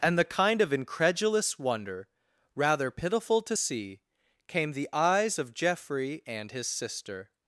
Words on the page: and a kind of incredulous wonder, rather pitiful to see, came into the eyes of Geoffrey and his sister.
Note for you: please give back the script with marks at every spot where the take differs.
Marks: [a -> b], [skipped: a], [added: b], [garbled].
and [a -> the] kind of incredulous wonder, rather pitiful to see, came [skipped: into] the eyes of Geoffrey and his sister.